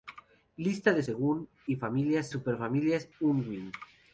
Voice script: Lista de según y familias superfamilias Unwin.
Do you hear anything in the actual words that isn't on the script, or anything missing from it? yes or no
no